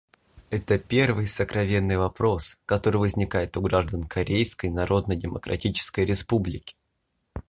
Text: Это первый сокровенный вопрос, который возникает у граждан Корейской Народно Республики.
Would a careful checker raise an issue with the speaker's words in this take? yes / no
yes